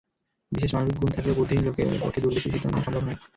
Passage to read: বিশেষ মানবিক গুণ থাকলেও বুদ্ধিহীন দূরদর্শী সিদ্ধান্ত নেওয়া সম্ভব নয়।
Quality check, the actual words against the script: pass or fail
fail